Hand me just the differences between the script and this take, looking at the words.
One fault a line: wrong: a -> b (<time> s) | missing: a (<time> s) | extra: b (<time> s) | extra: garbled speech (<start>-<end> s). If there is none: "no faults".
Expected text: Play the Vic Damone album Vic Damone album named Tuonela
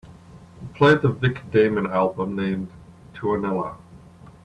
missing: Vic Damone album (2.4 s)